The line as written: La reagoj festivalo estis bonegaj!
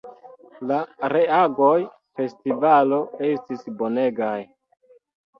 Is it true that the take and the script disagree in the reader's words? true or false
false